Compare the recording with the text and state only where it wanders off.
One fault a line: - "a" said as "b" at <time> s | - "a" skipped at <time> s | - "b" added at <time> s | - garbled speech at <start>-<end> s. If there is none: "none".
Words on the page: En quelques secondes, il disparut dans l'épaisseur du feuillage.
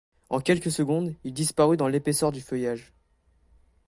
none